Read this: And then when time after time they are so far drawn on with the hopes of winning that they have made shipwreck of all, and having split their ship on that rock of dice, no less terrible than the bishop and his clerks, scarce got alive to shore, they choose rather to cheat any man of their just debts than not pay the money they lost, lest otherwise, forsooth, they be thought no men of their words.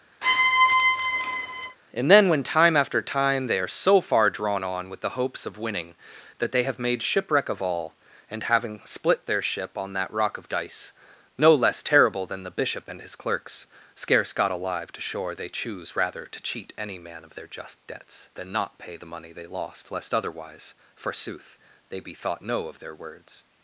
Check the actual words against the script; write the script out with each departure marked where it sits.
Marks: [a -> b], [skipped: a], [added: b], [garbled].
And then when time after time they are so far drawn on with the hopes of winning that they have made shipwreck of all, and having split their ship on that rock of dice, no less terrible than the bishop and his clerks, scarce got alive to shore, they choose rather to cheat any man of their just debts than not pay the money they lost, lest otherwise, forsooth, they be thought no [skipped: men] of their words.